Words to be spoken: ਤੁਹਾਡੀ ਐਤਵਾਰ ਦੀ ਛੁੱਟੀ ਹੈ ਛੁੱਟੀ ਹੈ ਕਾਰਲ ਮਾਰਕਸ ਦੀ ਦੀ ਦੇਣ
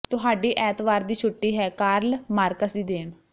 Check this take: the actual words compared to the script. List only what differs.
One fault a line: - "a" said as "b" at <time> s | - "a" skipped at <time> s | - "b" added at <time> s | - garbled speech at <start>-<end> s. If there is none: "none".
- "ਛੁੱਟੀ ਹੈ" skipped at 1.7 s
- "ਦੀ" skipped at 2.8 s